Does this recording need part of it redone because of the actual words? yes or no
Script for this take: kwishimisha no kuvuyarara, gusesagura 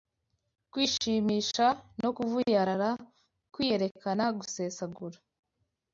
yes